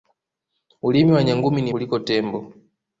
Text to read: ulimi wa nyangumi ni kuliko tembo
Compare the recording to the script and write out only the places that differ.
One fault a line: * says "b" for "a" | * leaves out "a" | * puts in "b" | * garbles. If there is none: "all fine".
all fine